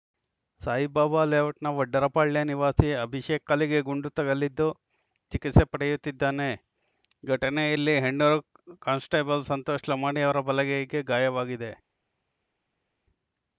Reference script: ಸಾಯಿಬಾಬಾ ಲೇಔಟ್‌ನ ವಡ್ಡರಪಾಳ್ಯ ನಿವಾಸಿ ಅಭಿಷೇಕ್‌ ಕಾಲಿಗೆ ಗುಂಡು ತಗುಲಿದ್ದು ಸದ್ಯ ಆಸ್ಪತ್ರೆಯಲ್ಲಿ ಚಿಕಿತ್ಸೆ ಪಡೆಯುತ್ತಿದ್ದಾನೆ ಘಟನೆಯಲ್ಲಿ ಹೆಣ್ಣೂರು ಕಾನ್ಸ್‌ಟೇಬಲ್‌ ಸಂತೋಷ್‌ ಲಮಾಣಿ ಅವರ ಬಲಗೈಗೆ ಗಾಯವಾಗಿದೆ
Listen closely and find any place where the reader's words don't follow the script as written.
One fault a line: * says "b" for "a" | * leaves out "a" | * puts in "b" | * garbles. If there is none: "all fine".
* leaves out "ಸದ್ಯ ಆಸ್ಪತ್ರೆಯಲ್ಲಿ"